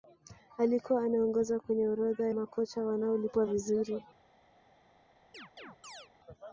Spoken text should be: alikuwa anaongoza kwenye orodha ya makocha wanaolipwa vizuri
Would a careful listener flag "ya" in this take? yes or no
yes